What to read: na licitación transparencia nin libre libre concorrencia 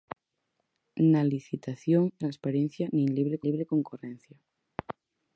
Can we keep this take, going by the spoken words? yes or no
yes